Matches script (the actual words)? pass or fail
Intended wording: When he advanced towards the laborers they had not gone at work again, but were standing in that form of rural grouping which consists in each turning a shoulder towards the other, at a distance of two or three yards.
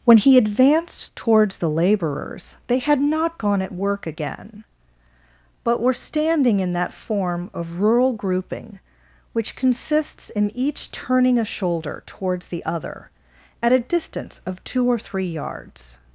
pass